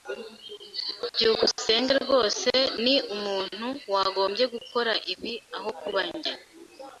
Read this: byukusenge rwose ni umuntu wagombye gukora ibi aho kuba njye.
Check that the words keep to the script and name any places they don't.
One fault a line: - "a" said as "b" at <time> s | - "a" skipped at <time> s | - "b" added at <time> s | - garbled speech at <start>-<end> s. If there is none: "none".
none